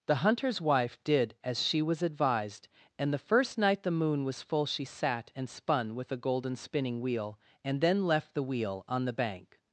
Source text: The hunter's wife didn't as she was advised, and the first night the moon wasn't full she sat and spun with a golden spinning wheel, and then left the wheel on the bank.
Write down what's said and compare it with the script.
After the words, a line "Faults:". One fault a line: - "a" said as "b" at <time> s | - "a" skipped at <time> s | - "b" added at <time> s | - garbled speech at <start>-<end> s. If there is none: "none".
The hunter's wife did as she was advised, and the first night the moon was full she sat and spun with a golden spinning wheel, and then left the wheel on the bank.
Faults:
- "didn't" said as "did" at 1.0 s
- "wasn't" said as "was" at 4.2 s